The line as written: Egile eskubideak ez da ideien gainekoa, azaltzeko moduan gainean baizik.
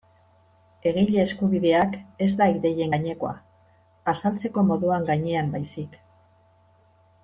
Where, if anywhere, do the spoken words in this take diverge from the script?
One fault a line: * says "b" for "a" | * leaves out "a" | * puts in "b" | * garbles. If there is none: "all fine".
all fine